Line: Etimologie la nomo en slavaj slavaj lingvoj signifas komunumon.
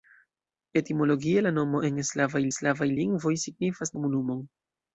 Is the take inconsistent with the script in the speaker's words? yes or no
no